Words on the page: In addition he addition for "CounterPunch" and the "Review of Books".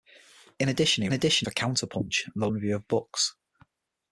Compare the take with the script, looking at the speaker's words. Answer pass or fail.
pass